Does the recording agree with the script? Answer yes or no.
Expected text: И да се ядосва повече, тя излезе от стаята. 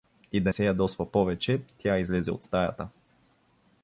yes